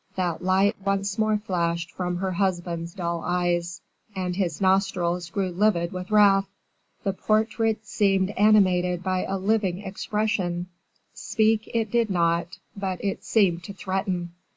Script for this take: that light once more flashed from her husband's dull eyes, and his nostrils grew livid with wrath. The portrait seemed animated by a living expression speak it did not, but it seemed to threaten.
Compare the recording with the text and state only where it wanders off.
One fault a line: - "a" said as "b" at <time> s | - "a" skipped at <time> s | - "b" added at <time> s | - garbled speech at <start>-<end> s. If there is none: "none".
none